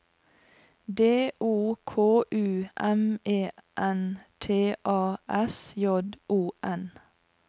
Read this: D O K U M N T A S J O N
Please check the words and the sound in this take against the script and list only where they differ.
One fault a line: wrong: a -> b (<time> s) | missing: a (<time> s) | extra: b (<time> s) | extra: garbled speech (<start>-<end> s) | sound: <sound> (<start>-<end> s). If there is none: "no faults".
extra: E (3.2 s)